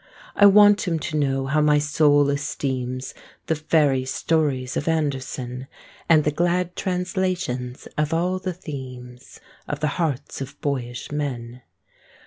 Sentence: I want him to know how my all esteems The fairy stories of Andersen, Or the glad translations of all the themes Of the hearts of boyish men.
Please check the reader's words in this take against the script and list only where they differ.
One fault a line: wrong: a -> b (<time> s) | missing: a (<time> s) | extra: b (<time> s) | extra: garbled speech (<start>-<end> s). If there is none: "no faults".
wrong: all -> soul (1.8 s)
wrong: Or -> And (6.1 s)